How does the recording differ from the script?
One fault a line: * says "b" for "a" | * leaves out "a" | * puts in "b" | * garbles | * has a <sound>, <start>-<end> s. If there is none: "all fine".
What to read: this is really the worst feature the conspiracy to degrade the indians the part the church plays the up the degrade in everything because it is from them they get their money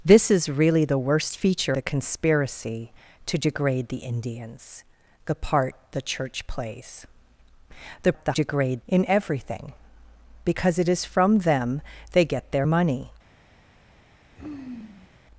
* has a sigh, 14.3-15.2 s